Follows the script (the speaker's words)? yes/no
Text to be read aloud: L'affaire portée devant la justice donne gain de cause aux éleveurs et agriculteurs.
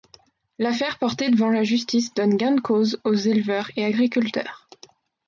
yes